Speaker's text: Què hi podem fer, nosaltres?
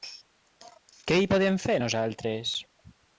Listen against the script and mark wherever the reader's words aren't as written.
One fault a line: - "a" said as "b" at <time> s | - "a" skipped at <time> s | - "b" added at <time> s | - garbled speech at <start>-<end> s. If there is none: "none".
none